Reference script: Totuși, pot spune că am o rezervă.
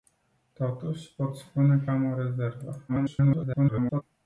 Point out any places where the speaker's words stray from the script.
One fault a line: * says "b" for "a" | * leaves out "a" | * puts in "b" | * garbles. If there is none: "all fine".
* garbles